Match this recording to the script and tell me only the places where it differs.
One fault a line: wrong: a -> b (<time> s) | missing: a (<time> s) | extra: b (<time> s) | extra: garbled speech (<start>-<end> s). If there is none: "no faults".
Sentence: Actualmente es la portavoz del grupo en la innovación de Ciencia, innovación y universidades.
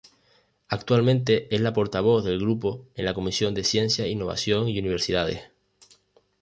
wrong: innovación -> comisión (3.1 s)